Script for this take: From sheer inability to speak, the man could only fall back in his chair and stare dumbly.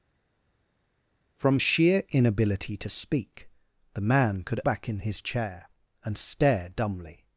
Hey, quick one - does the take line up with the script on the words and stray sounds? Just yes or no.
no